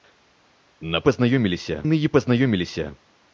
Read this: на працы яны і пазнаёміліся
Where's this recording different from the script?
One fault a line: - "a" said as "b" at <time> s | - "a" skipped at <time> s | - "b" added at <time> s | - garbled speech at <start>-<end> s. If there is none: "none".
- "працы" said as "пазнаёміліся" at 1.1 s